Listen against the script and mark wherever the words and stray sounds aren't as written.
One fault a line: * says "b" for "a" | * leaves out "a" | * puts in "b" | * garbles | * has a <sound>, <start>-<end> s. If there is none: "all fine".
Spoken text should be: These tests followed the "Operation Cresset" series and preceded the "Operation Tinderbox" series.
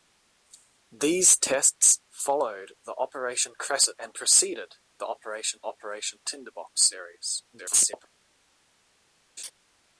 * leaves out "series"
* puts in "operation"
* garbles
* has a laugh, 9.4-9.5 s